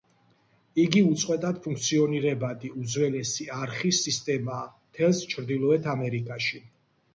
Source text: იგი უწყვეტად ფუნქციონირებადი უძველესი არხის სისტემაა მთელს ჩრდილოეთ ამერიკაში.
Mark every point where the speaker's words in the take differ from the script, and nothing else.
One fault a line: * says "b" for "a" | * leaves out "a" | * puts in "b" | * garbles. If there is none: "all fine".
all fine